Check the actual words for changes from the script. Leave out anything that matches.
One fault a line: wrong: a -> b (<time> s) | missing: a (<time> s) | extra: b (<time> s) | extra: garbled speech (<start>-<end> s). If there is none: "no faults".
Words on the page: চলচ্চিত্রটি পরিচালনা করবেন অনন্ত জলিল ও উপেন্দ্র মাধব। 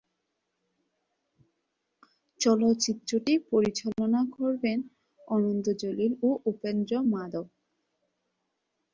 no faults